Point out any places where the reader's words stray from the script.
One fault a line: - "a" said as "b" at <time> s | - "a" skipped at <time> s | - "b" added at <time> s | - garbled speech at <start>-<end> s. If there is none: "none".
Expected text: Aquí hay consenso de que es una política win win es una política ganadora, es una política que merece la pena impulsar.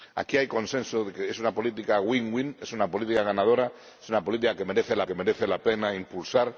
- "que merece la" added at 5.0 s